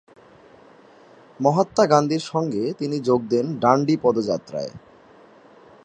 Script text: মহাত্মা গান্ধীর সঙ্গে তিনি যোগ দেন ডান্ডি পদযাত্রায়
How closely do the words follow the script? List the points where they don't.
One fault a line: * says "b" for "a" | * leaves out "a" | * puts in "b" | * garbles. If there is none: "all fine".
all fine